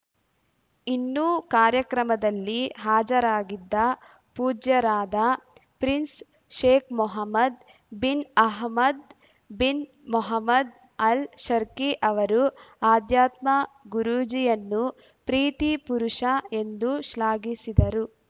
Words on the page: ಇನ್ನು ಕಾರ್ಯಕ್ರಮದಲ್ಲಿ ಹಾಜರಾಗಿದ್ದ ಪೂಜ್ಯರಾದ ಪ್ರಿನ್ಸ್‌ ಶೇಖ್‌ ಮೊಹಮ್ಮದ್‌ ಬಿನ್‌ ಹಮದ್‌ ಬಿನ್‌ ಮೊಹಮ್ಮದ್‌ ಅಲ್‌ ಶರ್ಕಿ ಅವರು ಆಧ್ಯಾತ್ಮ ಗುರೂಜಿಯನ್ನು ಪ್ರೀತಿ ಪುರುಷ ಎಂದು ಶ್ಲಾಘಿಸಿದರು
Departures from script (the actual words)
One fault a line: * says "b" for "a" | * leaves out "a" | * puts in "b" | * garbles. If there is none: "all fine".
all fine